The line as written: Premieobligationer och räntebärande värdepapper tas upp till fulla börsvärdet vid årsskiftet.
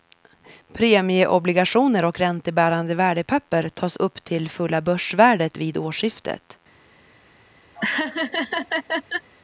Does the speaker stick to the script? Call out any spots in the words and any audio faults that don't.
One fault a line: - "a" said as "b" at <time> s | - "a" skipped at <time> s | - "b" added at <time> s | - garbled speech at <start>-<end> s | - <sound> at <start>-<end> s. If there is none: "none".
- laugh at 7.7-9.3 s